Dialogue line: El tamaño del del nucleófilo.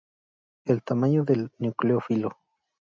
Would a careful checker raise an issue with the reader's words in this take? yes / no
yes